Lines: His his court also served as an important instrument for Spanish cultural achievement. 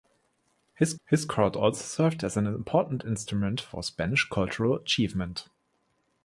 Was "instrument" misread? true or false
false